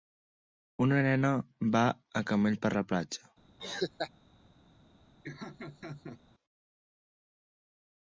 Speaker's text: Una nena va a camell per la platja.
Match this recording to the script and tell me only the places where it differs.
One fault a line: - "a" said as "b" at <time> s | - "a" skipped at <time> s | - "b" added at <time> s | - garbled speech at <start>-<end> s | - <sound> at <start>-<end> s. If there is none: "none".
- laugh at 3.6-4.1 s
- laugh at 5.2-6.2 s